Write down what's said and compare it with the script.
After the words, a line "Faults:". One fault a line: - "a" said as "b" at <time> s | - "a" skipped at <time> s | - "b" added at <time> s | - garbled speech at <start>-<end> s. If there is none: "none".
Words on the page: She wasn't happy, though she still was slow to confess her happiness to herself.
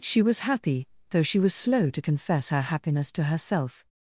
She was happy, though she was slow to confess her happiness to herself.
Faults:
- "wasn't" said as "was" at 0.2 s
- "still" skipped at 1.4 s